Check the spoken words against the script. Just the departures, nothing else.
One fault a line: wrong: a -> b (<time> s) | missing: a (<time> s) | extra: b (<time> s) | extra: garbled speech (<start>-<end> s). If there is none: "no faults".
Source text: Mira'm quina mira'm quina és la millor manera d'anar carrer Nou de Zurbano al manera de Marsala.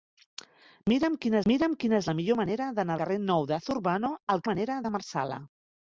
no faults